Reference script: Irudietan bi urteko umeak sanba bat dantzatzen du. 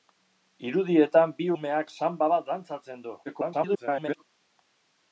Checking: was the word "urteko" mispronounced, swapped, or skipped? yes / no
yes